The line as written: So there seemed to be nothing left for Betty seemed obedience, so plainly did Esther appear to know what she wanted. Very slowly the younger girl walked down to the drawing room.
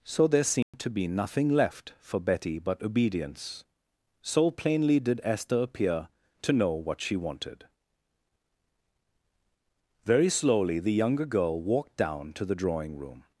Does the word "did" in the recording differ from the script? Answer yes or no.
no